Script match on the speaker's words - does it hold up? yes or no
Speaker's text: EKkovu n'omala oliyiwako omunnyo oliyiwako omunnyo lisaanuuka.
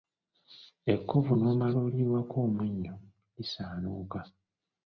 no